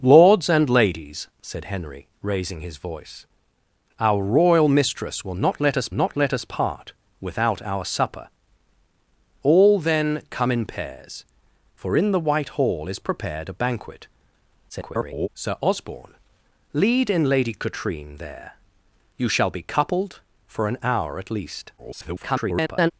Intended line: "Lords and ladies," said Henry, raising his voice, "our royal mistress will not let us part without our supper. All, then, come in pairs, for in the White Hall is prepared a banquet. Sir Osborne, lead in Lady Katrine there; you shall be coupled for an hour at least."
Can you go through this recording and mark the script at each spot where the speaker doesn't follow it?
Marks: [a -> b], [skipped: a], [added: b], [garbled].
"Lords and ladies," said Henry, raising his voice, "our royal mistress will not let us [added: not let us] part without our supper. All, then, come in pairs, for in the White Hall is prepared a banquet. [garbled] Sir Osborne, lead in Lady Katrine there; you shall be coupled for an hour at least." [garbled]